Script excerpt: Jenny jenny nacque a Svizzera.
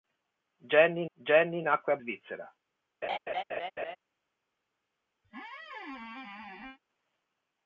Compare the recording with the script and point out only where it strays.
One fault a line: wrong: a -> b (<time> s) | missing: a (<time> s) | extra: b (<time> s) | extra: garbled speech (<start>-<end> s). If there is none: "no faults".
no faults